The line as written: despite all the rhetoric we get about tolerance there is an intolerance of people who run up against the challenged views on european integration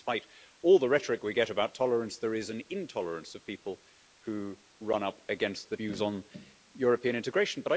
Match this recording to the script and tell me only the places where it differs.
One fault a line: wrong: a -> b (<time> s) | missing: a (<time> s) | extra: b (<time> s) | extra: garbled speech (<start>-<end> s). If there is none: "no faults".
missing: challenged (5.8 s)